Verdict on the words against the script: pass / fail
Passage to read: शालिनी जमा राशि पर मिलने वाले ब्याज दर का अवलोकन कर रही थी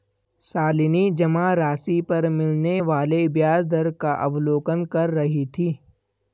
pass